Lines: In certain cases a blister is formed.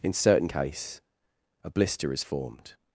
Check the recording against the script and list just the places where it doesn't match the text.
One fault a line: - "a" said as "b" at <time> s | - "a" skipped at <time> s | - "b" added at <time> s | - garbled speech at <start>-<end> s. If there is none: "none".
- "cases" said as "case" at 0.4 s